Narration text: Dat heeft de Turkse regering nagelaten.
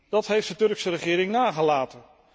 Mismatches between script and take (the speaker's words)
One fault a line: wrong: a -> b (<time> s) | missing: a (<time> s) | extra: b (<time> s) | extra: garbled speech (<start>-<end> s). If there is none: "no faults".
no faults